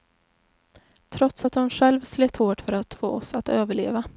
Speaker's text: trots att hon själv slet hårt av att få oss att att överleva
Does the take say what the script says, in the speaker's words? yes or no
no